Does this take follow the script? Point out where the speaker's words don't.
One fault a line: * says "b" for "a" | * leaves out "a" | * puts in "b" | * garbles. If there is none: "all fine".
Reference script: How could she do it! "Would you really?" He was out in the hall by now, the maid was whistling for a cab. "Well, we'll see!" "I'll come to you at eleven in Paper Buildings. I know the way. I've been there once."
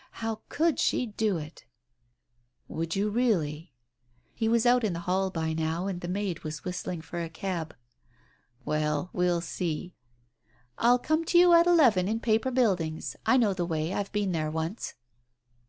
* puts in "and"